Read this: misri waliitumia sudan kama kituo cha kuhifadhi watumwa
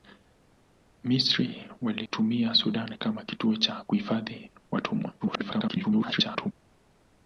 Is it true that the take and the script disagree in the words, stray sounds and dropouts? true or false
true